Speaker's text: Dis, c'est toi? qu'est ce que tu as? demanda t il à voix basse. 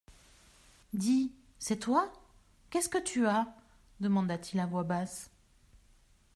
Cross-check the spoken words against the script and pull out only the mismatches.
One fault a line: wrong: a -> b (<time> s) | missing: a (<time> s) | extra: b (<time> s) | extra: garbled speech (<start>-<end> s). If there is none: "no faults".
no faults